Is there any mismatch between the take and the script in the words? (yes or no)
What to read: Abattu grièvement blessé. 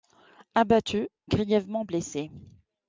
no